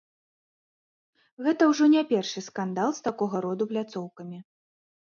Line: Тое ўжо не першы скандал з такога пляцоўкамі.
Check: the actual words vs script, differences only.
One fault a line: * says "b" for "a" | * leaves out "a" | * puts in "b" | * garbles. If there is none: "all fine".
* says "Гэта" for "Тое"
* puts in "роду"